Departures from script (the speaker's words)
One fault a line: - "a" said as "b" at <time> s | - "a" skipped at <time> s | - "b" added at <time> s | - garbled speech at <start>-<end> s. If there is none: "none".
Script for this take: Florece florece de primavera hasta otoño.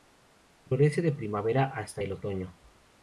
- "florece" skipped at 1.0 s
- "el" added at 2.0 s